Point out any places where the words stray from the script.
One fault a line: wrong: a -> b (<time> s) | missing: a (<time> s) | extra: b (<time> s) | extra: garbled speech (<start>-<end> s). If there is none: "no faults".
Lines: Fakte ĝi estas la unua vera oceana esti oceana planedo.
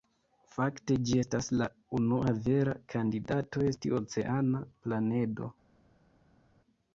wrong: oceana -> kandidato (2.9 s)